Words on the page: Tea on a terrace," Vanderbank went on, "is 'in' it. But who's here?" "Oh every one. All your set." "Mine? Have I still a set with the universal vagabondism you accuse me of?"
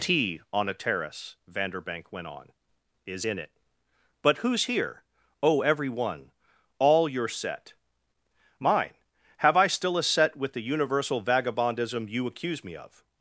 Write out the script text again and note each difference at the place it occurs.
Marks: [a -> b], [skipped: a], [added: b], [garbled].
Tea on a terrace," Vanderbank went on, "is 'in' it. But who's here?" "Oh every one. All your set." "Mine? Have I still a set with the universal vagabondism you accuse me of?"